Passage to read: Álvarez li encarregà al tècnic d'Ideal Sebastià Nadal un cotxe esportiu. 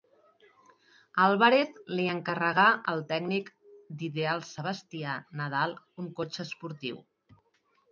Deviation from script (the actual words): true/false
false